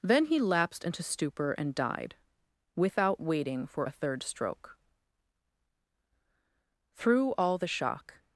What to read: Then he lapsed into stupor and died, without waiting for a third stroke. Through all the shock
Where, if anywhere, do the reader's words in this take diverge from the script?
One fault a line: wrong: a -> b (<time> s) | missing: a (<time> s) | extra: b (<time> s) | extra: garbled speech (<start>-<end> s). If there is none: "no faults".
no faults